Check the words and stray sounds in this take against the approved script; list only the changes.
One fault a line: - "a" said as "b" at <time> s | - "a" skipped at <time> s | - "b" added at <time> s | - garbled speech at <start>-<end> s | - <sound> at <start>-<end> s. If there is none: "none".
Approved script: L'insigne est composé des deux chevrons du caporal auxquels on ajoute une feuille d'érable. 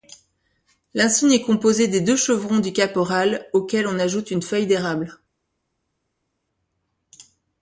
none